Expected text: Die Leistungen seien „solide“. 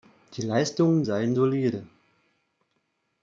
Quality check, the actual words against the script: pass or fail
pass